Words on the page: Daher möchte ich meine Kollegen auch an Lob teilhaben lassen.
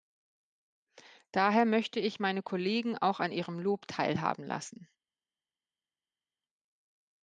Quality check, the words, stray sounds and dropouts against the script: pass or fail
fail